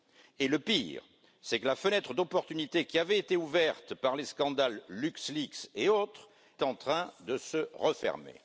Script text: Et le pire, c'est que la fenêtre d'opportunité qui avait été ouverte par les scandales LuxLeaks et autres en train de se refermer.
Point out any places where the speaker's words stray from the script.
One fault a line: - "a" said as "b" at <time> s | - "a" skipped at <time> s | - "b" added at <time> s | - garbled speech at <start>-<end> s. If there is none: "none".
none